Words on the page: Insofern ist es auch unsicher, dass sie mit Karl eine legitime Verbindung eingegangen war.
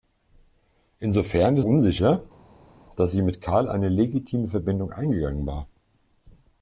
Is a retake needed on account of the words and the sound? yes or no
yes